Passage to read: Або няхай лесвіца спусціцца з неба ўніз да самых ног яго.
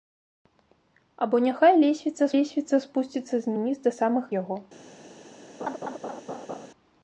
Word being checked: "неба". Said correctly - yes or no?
no